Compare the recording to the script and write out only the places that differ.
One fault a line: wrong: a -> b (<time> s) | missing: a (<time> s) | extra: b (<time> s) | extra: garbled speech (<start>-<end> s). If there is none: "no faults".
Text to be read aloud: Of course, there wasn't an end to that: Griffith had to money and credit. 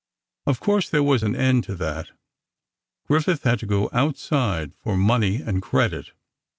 wrong: wasn't -> was (1.0 s)
extra: go outside for (3.7 s)